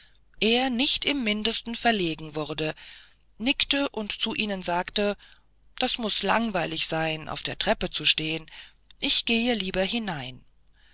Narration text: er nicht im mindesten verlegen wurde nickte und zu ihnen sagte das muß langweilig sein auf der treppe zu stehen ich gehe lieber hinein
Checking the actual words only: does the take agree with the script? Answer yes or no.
yes